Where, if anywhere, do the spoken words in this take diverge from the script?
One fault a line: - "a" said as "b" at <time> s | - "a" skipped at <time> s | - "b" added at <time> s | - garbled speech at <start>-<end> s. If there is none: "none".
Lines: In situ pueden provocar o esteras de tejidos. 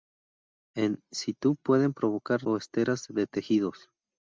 none